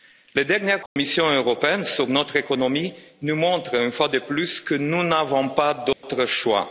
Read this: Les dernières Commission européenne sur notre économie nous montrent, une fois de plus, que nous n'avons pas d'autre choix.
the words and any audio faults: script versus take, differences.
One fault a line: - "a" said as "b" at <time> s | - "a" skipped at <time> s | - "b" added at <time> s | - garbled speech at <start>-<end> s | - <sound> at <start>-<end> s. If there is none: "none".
- dropout at 0.9-1.0 s
- dropout at 5.9-6.0 s